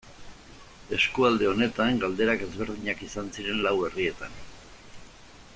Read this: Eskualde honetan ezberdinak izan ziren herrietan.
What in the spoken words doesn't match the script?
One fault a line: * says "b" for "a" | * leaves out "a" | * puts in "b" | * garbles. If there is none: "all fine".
* puts in "galderak"
* puts in "lau"